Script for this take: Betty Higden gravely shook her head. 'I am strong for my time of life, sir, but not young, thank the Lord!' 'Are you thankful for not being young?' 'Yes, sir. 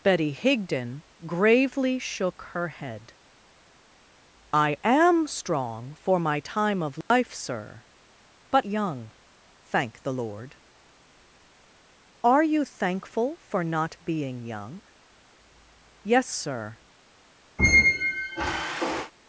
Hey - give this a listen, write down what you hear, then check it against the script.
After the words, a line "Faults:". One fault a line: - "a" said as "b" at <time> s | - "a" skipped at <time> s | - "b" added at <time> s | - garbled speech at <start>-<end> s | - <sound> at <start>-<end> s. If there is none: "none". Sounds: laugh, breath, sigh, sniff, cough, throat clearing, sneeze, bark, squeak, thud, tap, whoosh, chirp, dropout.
Betty Higden gravely shook her head. 'I am strong for my time of life, sir, but young, thank the Lord!' 'Are you thankful for not being young?' 'Yes, sir.
Faults:
- dropout at 7.0-7.1 s
- "not" skipped at 8.7 s
- squeak at 17.6-19.1 s